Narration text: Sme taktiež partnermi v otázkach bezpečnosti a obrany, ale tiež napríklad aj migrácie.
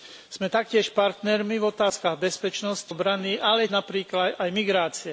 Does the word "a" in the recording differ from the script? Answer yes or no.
yes